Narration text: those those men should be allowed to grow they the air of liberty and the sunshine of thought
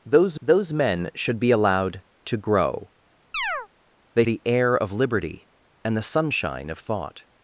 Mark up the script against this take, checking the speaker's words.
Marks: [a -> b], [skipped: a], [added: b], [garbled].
those those men should be allowed to grow they the air of liberty and the sunshine of thought